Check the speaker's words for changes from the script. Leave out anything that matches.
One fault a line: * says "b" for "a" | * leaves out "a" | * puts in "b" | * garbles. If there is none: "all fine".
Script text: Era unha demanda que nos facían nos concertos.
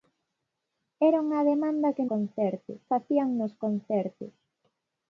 * says "concertos" for "nos"